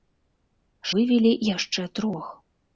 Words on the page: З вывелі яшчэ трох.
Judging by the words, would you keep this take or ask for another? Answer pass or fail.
pass